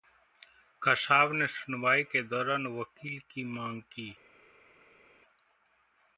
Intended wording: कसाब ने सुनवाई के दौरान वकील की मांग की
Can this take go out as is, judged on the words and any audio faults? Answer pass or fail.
pass